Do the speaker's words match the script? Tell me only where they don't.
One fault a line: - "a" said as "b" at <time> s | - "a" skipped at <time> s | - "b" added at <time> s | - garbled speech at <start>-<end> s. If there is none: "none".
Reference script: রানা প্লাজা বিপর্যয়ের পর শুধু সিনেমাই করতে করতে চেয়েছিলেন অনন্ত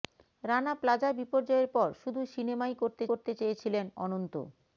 none